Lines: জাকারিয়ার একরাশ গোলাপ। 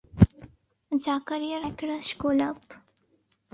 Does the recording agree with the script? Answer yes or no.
yes